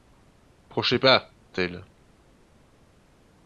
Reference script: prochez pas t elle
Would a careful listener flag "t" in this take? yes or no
no